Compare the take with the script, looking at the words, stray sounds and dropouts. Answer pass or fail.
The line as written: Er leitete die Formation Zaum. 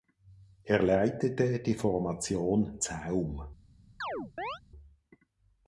fail